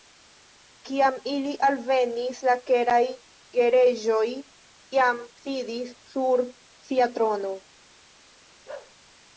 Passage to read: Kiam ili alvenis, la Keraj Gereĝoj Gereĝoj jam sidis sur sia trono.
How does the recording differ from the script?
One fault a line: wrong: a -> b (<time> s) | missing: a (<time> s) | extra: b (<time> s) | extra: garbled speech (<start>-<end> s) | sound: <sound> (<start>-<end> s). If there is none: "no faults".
missing: Gereĝoj (4.2 s)
sound: bark (8.7-9.0 s)